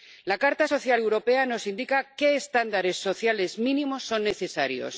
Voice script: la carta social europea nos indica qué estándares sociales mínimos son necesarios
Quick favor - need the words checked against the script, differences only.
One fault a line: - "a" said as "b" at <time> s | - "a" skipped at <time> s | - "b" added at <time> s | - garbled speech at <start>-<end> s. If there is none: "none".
none